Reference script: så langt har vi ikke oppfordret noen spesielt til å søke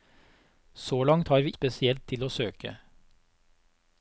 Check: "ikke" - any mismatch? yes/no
yes